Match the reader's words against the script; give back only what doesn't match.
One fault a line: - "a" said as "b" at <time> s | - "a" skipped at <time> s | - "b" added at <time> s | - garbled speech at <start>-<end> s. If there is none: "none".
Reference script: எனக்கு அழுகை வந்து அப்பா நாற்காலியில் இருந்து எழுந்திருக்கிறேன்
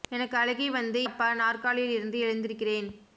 none